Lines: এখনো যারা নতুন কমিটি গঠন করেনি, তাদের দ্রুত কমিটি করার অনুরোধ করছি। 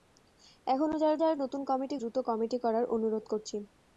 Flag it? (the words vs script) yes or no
yes